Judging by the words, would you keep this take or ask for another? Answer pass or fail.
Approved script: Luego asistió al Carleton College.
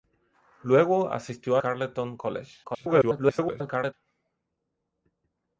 fail